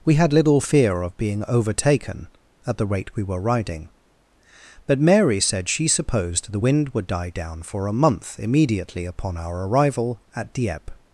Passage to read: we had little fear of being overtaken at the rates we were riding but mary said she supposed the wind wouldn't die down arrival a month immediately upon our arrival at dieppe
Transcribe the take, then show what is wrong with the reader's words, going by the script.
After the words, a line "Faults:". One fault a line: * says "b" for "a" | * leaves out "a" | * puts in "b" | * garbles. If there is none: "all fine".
we had little fear of being overtaken at the rate we were riding but mary said she supposed the wind would die down for a month immediately upon our arrival at dieppe
Faults:
* says "rate" for "rates"
* says "would" for "wouldn't"
* says "for" for "arrival"